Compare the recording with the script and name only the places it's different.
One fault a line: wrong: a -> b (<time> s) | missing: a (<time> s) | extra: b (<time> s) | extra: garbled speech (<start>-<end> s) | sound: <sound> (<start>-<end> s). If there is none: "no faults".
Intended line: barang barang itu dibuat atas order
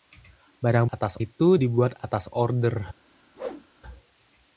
wrong: barang -> atas (0.8 s)
sound: whoosh (3.3-3.7 s)